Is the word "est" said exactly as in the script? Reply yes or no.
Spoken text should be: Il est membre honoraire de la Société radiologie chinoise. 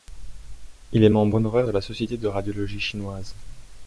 yes